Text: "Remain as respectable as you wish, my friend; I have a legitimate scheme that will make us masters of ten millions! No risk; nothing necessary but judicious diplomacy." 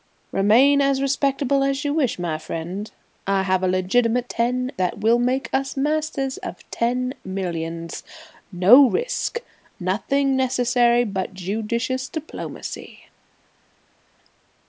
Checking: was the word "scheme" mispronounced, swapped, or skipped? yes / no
yes